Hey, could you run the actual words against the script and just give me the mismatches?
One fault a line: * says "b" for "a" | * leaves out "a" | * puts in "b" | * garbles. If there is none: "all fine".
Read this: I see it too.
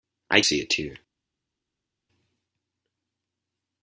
all fine